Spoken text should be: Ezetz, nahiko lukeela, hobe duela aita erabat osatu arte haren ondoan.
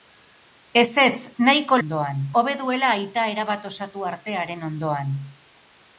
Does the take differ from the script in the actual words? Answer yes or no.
yes